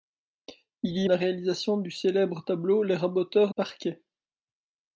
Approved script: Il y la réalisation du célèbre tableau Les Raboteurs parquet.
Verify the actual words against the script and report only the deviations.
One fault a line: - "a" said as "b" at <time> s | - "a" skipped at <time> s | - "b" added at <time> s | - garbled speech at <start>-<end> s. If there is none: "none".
none